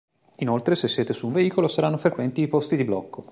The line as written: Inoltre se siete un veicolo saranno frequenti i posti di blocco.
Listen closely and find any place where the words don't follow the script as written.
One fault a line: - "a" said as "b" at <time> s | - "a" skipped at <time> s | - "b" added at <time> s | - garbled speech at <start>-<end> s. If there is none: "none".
- "su" added at 1.1 s